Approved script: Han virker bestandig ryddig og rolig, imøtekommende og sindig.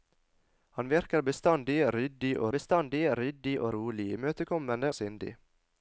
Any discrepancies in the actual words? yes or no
yes